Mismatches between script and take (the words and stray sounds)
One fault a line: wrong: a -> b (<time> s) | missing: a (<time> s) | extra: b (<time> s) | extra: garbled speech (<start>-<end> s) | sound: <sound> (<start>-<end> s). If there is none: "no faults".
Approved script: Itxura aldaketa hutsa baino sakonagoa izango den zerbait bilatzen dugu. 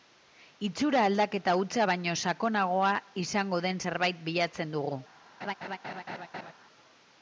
sound: laugh (5.4-6.5 s)